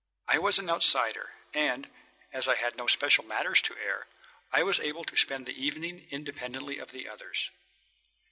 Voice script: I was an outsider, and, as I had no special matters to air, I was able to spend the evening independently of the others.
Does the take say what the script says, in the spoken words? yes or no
yes